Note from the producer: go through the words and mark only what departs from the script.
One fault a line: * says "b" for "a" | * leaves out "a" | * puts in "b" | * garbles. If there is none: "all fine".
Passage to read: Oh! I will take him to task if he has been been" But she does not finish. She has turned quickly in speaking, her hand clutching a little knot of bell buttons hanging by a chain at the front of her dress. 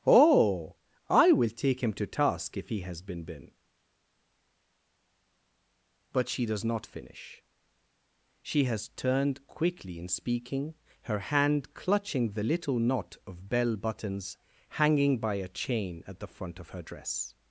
* says "the" for "a"